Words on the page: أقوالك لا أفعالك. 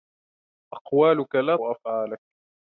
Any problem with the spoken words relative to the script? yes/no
no